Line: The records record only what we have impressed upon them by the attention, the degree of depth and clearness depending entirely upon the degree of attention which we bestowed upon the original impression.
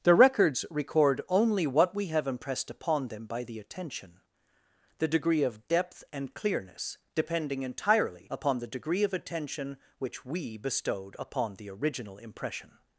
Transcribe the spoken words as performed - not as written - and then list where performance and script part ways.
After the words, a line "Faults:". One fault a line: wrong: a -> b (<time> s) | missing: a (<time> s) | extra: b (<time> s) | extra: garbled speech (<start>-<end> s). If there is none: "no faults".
The records record only what we have impressed upon them by the attention, the degree of depth and clearness depending entirely upon the degree of attention which we bestowed upon the original impression.
Faults:
no faults